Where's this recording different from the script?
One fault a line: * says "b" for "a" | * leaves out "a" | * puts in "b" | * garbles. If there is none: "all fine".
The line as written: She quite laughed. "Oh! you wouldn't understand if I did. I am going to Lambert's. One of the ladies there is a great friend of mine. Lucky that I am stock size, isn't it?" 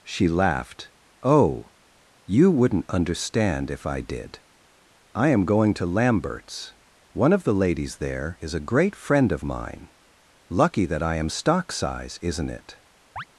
* leaves out "quite"